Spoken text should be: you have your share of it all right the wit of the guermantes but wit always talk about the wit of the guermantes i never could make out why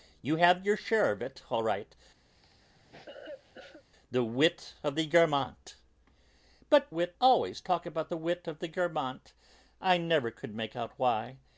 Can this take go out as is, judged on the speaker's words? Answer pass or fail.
pass